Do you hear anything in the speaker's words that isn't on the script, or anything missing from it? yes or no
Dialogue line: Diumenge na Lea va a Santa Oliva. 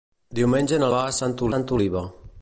yes